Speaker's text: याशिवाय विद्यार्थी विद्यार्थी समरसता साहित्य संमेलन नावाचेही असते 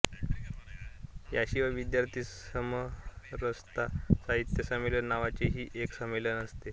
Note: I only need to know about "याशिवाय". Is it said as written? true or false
true